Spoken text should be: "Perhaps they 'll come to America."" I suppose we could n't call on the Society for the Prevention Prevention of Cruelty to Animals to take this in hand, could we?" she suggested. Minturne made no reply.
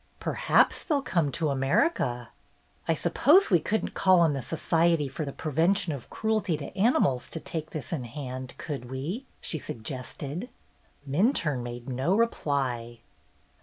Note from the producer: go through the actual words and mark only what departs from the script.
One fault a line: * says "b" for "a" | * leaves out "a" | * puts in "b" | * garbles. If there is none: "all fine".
* leaves out "Prevention"